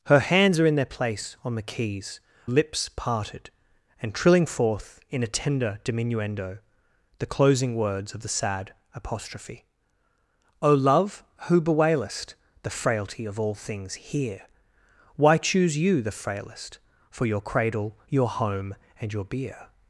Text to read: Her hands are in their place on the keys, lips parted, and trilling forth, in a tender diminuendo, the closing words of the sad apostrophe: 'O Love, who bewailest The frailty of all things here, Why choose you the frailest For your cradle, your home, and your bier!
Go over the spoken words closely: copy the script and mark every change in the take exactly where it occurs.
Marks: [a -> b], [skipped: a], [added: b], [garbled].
Her hands are in their place on the keys, lips parted, and trilling forth, in a tender diminuendo, the closing words of the sad apostrophe: 'O Love, who bewailest The frailty of all things here, Why choose you the frailest For your cradle, your home, and your bier!